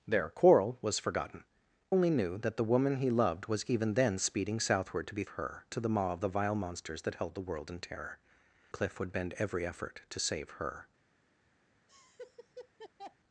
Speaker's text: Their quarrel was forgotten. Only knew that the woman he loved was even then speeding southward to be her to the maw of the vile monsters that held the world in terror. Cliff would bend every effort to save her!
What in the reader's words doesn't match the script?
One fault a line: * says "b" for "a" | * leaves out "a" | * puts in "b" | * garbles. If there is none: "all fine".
all fine